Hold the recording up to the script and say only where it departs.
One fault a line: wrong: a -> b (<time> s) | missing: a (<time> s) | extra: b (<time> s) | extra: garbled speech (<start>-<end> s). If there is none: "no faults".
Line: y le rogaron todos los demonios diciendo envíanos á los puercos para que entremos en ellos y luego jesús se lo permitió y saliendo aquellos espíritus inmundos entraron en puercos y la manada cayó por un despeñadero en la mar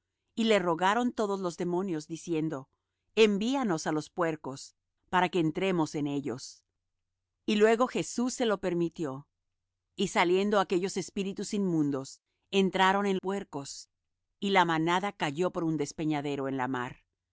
no faults